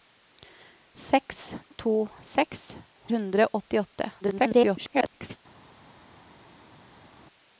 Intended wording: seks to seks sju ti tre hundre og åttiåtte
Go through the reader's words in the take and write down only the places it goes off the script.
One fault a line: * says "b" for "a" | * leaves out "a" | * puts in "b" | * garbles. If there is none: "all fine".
* leaves out "sju ti tre"
* garbles